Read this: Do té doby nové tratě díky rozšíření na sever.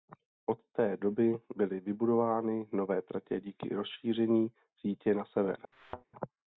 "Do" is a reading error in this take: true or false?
true